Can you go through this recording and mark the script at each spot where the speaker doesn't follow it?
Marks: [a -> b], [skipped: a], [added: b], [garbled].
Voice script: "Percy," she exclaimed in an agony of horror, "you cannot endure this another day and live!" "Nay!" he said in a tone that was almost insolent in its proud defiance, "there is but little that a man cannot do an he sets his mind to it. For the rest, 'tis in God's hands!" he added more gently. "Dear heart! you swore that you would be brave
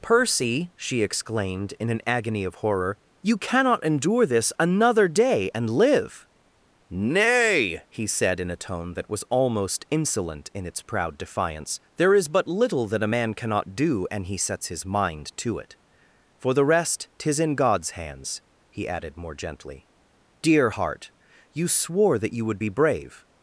"Percy," she exclaimed in an agony of horror, "you cannot endure this another day and live!" "Nay!" he said in a tone that was almost insolent in its proud defiance, "there is but little that a man cannot do an he sets his mind to it. For the rest, 'tis in God's hands!" he added more gently. "Dear heart! you swore that you would be brave